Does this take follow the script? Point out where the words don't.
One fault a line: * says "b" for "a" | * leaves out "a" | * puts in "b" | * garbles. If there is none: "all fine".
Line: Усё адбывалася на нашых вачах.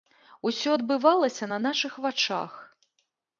all fine